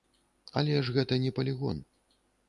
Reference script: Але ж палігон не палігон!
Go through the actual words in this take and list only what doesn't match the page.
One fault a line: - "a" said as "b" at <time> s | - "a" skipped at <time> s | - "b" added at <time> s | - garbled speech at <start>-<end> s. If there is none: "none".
- "палігон" said as "гэта" at 1.0 s